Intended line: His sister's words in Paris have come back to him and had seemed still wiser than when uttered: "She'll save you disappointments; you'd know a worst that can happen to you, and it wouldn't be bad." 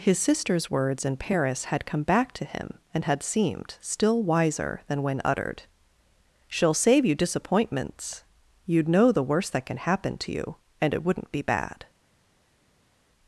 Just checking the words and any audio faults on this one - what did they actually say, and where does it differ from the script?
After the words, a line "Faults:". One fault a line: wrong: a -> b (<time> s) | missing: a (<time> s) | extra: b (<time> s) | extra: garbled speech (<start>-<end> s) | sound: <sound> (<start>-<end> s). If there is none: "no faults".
His sister's words in Paris had come back to him and had seemed still wiser than when uttered: "She'll save you disappointments; you'd know the worst that can happen to you, and it wouldn't be bad."
Faults:
wrong: have -> had (1.7 s)
wrong: a -> the (9.1 s)